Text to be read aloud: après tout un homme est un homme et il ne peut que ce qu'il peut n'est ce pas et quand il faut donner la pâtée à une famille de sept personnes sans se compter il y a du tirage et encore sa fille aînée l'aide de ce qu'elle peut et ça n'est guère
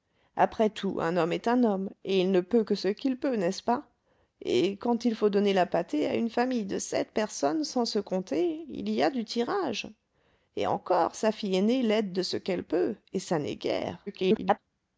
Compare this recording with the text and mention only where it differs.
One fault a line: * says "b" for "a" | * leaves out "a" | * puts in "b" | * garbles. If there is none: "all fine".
* garbles